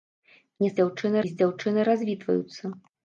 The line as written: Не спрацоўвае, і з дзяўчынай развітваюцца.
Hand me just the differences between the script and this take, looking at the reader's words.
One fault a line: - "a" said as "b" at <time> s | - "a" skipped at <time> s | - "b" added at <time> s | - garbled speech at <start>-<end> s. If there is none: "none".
- "спрацоўвае" said as "дзяўчынай" at 0.8 s